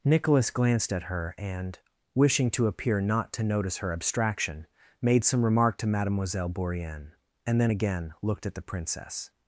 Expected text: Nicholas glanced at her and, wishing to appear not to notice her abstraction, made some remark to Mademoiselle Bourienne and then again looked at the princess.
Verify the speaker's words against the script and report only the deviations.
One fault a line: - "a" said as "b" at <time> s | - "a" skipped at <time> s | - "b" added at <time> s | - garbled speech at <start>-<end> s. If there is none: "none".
none